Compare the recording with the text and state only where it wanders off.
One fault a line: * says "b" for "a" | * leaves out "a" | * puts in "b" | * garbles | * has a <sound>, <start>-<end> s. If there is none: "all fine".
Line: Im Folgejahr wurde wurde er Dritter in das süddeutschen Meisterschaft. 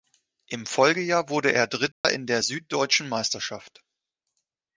* leaves out "wurde"
* has a dropout, 1.9-2.0 s
* says "der" for "das"